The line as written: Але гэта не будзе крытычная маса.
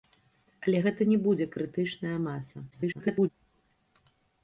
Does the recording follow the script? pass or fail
fail